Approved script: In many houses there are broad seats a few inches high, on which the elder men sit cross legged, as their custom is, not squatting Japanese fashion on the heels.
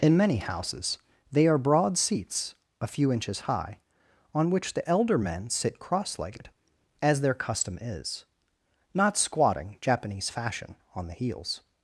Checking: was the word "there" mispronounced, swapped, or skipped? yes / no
yes